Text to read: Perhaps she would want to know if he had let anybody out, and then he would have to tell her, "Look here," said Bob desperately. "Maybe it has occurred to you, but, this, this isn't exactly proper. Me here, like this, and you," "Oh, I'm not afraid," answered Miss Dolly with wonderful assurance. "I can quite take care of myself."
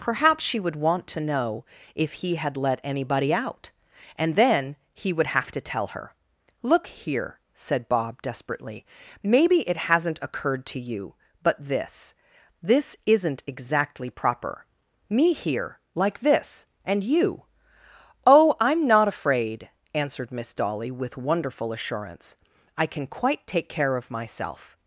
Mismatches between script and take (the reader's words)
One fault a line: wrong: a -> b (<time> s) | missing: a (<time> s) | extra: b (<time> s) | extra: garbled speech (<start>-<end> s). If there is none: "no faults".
wrong: has -> hasn't (9.9 s)